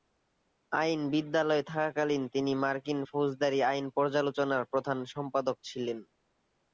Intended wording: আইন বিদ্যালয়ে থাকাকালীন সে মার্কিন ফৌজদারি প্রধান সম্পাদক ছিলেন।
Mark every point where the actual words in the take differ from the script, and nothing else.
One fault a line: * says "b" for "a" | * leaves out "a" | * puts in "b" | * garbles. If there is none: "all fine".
* says "তিনি" for "সে"
* puts in "আইন পর্যালোচনার"